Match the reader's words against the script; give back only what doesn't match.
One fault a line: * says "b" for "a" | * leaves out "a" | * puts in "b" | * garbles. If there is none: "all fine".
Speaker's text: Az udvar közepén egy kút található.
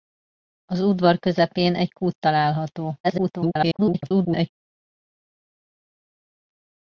* garbles